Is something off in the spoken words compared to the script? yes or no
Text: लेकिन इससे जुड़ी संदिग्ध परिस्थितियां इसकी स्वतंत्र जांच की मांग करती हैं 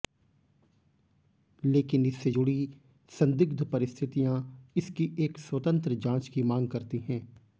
yes